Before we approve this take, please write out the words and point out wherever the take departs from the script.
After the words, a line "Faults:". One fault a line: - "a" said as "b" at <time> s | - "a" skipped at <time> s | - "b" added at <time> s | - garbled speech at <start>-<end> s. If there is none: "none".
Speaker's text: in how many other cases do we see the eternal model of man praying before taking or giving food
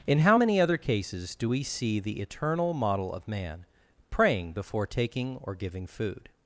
in how many other cases do we see the eternal model of man praying before taking or giving food
Faults:
none